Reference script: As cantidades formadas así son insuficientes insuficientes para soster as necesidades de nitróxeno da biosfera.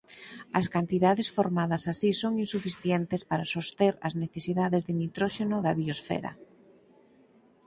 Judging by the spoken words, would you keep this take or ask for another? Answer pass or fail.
fail